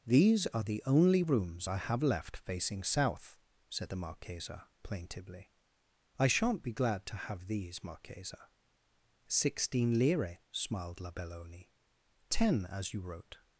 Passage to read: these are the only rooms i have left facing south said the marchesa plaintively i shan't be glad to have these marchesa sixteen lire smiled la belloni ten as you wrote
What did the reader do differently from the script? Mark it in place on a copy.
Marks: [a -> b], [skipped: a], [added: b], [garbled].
these are the only rooms i have left facing south said the marchesa plaintively i shan't be glad to have these marchesa sixteen lire smiled la belloni ten as you wrote